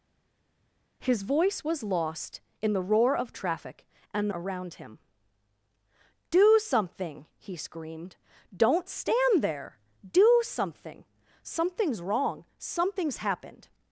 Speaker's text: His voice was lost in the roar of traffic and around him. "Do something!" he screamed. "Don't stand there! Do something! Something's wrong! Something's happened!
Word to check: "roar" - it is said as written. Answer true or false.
true